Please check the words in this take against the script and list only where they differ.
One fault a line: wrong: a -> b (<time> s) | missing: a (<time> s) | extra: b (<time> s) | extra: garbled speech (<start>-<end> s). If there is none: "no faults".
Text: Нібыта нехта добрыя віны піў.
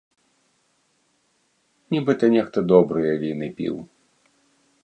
no faults